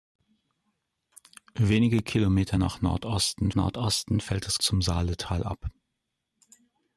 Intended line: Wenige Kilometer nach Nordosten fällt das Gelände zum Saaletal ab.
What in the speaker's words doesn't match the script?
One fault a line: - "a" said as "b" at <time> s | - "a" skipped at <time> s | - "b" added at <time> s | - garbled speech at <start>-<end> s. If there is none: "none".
- "Nordosten" added at 3.5 s
- "Gelände" skipped at 4.6 s